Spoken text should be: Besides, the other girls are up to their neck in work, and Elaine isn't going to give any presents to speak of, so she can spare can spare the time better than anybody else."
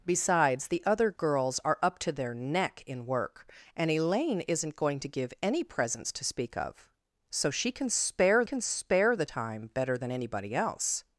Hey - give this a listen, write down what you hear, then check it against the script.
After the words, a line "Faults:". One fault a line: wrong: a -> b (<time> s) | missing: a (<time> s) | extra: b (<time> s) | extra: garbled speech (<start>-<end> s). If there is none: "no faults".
Besides, the other girls are up to their neck in work, and Elaine isn't going to give any presents to speak of, so she can spare can spare the time better than anybody else."
Faults:
no faults